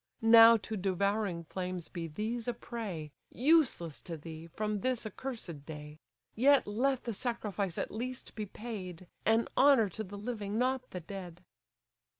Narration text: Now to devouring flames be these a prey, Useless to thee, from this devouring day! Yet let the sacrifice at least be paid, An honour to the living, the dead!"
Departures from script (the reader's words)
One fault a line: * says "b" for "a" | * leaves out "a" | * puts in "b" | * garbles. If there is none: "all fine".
* says "accursed" for "devouring"
* puts in "not"